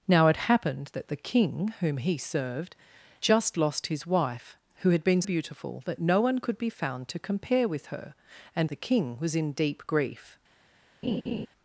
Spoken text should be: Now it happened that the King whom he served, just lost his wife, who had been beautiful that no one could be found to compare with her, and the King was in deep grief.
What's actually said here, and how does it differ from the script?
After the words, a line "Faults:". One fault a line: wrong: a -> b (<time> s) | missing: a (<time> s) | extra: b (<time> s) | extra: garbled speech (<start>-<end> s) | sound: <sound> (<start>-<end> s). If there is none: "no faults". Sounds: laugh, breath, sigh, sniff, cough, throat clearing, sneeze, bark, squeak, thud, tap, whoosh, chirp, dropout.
Now it happened that the King whom he served, just lost his wife, who had been beautiful that no one could be found to compare with her, and the King was in deep grief.
Faults:
sound: laugh (11.0-11.5 s)